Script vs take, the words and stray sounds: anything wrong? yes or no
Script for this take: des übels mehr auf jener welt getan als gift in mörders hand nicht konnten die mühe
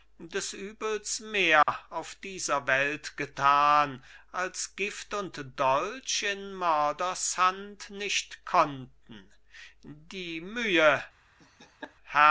yes